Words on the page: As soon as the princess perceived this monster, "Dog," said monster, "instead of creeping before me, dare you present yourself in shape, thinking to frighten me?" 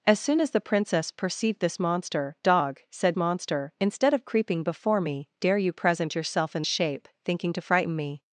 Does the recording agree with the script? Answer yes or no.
yes